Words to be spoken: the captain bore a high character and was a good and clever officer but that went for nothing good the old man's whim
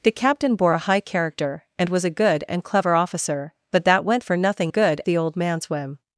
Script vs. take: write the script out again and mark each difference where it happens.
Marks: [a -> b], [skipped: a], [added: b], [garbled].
the captain bore a high character and was a good and clever officer but that went for nothing good the old man's whim